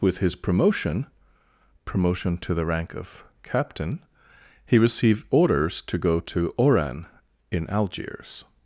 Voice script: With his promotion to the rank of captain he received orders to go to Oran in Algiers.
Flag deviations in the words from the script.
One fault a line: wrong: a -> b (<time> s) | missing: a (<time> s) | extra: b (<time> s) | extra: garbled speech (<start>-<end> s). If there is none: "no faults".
extra: promotion (1.9 s)